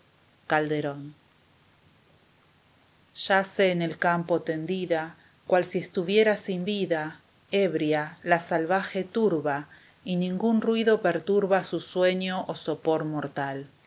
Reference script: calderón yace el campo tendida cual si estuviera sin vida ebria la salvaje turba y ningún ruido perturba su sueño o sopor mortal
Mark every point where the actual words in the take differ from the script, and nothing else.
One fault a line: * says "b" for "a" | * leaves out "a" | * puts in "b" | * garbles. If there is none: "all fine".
* puts in "en"